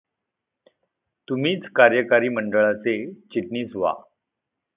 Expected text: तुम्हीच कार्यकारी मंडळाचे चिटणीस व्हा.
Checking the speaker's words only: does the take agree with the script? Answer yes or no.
yes